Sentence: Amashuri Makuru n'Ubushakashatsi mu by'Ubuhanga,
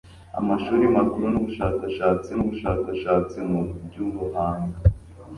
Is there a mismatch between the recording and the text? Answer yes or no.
yes